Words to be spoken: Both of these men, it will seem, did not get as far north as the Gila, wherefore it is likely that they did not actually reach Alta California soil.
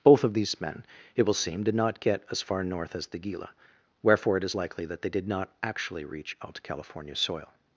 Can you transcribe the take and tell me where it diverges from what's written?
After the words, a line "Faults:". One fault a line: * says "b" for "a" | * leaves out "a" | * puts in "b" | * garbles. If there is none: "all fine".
Both of these men, it will seem, did not get as far north as the Gila, wherefore it is likely that they did not actually reach Alta California soil.
Faults:
all fine